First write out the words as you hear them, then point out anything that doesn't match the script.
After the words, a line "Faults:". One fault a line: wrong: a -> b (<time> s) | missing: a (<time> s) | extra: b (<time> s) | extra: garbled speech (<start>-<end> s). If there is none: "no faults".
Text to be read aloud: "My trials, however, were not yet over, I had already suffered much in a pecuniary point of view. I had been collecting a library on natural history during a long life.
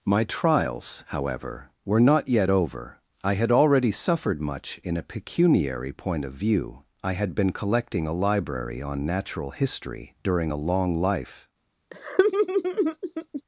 "My trials, however, were not yet over, I had already suffered much in a pecuniary point of view. I had been collecting a library on natural history during a long life.
Faults:
no faults